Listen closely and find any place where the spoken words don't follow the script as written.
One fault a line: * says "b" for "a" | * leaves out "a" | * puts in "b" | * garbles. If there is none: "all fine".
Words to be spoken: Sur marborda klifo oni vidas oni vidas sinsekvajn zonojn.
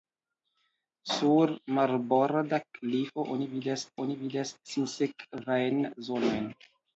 all fine